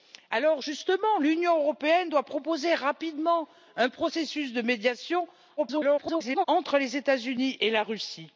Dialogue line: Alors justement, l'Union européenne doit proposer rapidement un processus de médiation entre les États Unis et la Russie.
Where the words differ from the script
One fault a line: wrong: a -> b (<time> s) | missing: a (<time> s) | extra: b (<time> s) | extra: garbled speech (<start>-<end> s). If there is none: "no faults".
extra: garbled speech (5.6-6.4 s)